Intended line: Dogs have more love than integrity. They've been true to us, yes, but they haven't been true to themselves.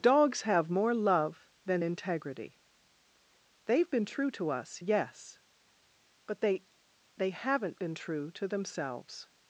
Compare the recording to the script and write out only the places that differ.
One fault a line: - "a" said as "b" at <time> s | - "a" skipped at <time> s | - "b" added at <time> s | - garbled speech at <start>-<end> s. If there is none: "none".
- "they" added at 7.2 s